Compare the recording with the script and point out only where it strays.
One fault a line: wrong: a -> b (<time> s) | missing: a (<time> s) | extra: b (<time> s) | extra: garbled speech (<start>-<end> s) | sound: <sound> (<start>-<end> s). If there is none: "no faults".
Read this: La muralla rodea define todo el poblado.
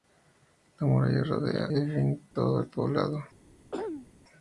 sound: dropout (2.3-2.4 s)
sound: throat clearing (3.7-4.1 s)